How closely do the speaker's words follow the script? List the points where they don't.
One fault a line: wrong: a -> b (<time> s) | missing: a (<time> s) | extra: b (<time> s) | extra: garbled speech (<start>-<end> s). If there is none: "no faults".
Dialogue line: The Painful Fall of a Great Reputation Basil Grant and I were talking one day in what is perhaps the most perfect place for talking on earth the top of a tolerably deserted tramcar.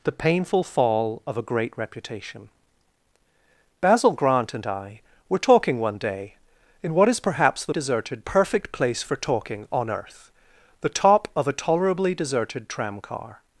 wrong: most -> deserted (7.7 s)